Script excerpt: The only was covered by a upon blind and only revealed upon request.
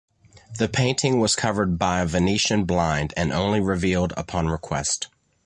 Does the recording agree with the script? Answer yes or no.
no